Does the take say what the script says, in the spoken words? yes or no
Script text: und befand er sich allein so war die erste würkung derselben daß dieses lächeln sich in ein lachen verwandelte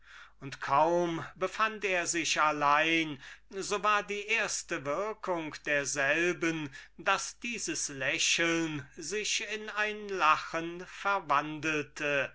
no